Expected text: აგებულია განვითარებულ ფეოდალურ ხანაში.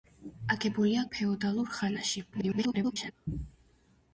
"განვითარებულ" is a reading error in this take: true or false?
true